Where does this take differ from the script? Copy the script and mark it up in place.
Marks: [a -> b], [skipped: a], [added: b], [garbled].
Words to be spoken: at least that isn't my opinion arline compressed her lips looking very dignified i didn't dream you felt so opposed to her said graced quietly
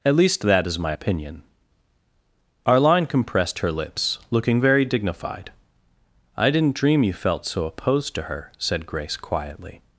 at least that [isn't -> is] my opinion arline compressed her lips looking very dignified i didn't dream you felt so opposed to her said [graced -> grace] quietly